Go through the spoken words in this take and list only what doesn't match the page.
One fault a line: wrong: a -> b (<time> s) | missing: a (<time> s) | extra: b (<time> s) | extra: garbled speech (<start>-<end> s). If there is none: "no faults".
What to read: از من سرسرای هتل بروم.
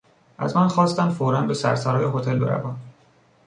extra: خواستند فورا به (0.7 s)